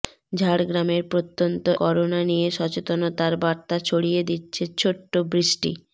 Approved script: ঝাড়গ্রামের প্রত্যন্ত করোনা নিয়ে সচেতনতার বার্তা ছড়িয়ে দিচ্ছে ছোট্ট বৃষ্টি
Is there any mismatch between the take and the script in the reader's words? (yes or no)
no